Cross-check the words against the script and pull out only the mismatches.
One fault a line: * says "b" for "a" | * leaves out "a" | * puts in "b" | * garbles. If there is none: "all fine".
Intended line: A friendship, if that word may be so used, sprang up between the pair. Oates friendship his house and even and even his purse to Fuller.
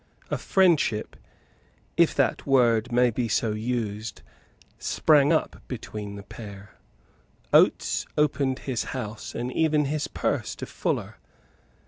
* says "opened" for "friendship"
* leaves out "and even"